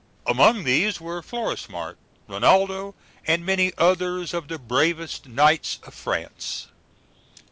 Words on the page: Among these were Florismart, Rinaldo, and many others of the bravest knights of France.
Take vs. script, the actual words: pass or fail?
pass